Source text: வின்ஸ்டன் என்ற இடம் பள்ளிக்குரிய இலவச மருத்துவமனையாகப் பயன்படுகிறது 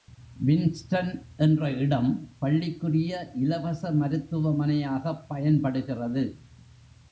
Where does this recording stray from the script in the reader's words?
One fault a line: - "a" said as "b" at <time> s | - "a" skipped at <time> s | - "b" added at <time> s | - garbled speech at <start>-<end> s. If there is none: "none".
none